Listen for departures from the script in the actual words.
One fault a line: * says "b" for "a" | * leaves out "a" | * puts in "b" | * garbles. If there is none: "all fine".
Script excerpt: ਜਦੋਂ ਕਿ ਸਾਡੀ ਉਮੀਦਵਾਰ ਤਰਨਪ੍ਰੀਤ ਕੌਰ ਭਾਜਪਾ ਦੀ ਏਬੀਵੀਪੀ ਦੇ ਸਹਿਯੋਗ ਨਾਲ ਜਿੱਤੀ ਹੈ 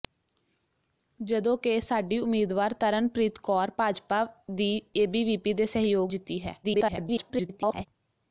* leaves out "ਨਾਲ"
* garbles